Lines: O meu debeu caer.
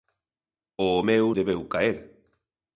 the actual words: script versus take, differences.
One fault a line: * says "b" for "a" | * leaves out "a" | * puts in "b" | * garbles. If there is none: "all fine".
all fine